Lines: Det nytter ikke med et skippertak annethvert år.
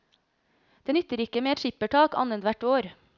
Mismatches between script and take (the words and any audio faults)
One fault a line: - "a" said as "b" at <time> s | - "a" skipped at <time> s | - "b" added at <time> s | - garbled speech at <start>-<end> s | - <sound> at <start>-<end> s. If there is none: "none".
none